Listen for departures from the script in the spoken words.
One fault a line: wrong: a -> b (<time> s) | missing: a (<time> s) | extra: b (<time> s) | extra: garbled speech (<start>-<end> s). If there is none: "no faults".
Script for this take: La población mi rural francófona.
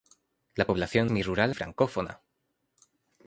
no faults